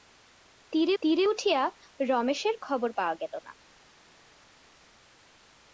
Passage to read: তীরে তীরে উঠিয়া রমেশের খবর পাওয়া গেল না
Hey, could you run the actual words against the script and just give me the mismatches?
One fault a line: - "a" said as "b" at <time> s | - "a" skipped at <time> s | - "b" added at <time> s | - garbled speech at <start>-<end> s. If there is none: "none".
none